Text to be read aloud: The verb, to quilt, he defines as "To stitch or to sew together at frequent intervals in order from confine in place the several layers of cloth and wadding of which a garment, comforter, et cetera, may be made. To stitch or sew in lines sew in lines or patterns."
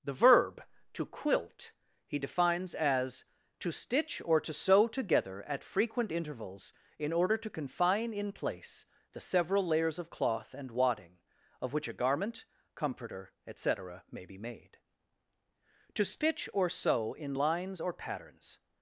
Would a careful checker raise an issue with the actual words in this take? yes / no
yes